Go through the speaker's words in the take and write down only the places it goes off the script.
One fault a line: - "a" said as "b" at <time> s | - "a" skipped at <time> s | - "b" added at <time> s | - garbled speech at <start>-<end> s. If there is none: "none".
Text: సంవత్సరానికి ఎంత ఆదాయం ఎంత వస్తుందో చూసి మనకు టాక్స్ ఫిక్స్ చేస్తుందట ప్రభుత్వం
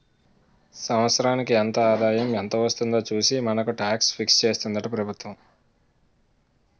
none